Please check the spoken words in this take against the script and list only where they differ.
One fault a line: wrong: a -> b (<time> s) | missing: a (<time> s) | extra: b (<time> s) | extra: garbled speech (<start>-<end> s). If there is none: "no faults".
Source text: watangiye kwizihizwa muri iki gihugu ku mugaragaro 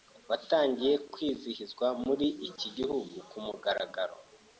no faults